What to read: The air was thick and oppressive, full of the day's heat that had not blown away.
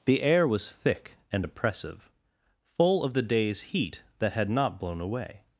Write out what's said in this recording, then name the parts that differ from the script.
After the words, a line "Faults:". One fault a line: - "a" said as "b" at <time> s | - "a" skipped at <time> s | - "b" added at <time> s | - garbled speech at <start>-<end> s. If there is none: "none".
The air was thick and oppressive, full of the day's heat that had not blown away.
Faults:
none